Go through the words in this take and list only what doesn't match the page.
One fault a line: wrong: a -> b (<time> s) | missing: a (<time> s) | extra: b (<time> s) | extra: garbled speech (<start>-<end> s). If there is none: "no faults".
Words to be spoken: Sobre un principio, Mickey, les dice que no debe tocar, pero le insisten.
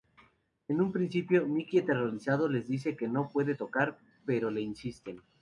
wrong: Sobre -> En (0.7 s)
extra: aterrorizado (1.8 s)
wrong: debe -> puede (3.3 s)